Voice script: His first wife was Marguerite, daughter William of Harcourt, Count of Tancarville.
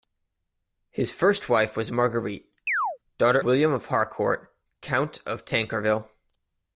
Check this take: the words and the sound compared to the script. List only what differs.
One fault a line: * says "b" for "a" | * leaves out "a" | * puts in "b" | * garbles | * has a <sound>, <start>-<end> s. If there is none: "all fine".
* has a chirp, 2.7-3.0 s